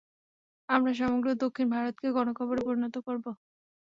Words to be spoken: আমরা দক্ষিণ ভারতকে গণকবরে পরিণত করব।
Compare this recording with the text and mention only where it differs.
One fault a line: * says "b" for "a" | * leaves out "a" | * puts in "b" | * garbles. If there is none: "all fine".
* puts in "সমগ্র"